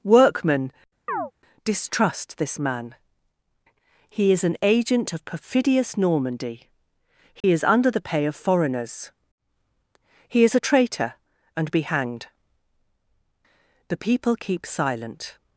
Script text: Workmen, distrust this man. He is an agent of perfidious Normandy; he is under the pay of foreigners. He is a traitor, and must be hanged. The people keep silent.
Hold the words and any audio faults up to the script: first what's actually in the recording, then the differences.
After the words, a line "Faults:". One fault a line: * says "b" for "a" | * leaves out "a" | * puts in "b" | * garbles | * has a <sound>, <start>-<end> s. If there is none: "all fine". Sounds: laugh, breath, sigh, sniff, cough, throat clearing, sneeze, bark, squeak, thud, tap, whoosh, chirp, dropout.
Workmen, distrust this man. He is an agent of perfidious Normandy; he is under the pay of foreigners. He is a traitor, and be hanged. The people keep silent.
Faults:
* has a chirp, 1.1-1.3 s
* has a dropout, 7.4-7.4 s
* leaves out "must"